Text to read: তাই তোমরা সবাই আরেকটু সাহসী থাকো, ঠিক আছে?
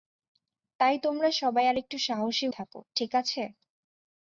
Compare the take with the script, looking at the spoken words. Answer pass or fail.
pass